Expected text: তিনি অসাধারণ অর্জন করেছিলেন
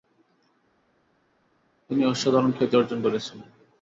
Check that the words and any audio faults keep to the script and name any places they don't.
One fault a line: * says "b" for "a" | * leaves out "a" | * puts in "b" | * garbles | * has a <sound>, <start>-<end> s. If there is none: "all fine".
* puts in "খ্যাতি"